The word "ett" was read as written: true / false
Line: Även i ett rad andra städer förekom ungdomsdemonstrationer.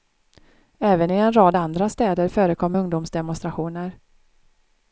false